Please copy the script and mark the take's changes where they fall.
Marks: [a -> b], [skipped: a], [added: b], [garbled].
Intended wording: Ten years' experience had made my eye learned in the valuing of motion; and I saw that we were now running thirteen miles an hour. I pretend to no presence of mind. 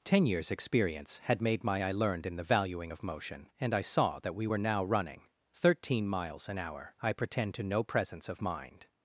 Ten years' experience had made my eye learned in the valuing of motion; and I saw that we were now running thirteen miles an hour. I pretend to no presence of mind.